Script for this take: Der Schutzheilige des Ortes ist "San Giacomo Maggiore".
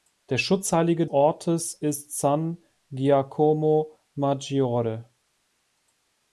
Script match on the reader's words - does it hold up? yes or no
no